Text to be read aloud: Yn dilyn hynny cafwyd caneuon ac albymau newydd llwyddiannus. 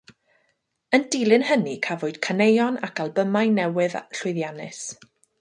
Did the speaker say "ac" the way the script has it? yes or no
yes